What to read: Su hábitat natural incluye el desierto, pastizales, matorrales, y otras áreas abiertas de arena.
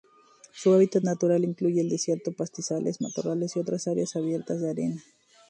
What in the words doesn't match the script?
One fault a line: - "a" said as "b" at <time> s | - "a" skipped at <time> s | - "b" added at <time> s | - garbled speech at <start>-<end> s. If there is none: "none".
none